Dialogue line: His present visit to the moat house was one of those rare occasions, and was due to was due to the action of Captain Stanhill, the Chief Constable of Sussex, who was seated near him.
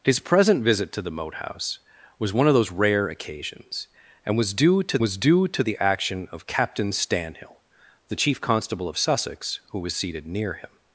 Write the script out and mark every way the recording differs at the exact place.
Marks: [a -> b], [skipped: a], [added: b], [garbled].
His present visit to the moat house was one of those rare occasions, and was due to was due to the action of Captain Stanhill, the Chief Constable of Sussex, who was seated near him.